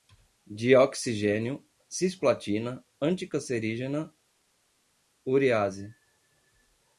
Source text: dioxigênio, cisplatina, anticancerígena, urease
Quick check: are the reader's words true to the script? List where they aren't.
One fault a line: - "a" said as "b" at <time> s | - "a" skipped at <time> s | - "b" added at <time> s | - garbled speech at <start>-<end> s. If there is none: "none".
none